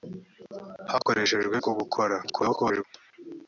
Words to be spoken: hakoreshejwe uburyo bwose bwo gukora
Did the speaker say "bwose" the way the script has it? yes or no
no